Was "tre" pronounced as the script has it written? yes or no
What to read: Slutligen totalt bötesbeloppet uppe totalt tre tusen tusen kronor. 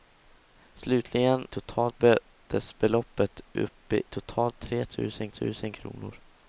yes